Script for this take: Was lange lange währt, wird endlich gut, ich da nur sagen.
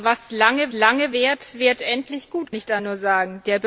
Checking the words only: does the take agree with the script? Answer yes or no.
yes